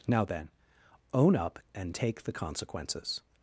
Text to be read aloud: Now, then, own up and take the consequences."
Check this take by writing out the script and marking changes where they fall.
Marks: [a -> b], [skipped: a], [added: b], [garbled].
Now, then, own up and take the consequences."